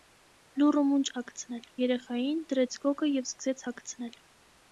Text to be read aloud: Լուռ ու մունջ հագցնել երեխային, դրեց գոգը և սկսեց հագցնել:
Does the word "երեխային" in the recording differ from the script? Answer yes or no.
no